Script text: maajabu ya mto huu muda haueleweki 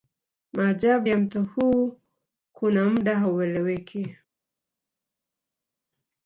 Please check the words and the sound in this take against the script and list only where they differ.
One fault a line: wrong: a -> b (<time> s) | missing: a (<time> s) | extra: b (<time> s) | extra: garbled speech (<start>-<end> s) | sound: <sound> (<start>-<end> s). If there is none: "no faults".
extra: kuna (2.5 s)